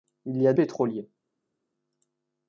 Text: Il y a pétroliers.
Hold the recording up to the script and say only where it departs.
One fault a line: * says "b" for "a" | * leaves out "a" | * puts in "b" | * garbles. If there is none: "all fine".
all fine